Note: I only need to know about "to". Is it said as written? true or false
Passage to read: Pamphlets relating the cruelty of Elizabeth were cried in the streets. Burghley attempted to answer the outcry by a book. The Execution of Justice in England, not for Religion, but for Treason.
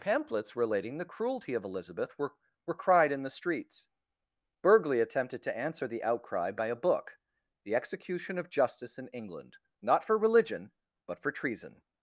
true